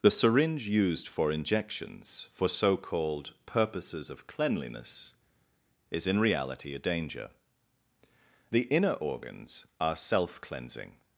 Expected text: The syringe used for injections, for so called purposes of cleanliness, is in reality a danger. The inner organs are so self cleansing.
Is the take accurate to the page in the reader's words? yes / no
no